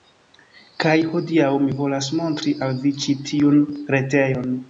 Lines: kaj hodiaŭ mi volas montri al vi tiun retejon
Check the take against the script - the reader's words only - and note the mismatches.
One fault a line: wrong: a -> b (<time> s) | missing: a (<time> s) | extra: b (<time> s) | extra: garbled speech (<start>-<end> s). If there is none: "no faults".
extra: ĉi (3.0 s)